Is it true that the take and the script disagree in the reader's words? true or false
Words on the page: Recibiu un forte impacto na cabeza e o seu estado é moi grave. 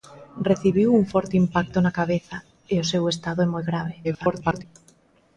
true